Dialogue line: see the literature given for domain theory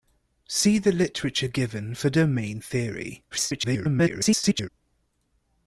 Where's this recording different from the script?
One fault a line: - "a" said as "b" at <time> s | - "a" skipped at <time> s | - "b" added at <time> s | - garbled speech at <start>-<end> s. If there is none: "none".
- garbled speech at 3.3-4.7 s